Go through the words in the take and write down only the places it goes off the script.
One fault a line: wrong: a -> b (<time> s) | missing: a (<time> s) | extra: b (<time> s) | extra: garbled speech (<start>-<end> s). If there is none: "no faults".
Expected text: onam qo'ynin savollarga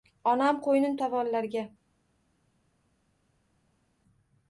no faults